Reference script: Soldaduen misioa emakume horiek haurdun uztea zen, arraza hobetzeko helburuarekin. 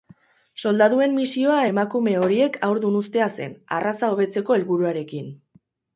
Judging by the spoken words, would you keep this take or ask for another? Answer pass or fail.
pass